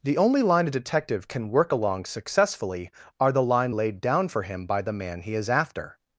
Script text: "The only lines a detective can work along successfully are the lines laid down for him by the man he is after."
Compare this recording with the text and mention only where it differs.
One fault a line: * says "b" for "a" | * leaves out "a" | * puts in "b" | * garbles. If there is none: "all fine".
* says "line" for "lines"
* says "line" for "lines"